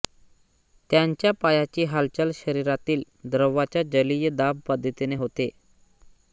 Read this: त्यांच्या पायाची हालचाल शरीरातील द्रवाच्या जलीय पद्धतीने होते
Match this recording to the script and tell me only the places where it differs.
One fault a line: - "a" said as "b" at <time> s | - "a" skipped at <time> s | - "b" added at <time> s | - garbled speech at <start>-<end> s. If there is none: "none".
- "दाब" added at 4.3 s